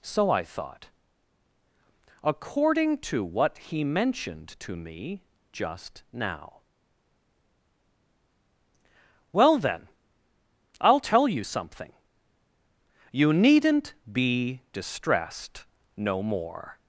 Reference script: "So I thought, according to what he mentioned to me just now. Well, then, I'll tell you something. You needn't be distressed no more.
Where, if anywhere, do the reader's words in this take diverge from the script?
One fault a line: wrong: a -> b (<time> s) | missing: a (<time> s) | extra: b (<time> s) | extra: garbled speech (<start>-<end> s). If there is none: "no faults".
no faults